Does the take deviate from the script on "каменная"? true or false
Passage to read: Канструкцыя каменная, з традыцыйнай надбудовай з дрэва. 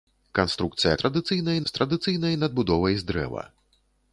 true